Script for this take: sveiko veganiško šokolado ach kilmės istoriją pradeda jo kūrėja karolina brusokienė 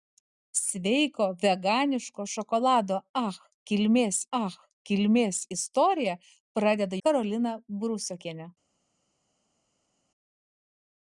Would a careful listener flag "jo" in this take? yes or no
yes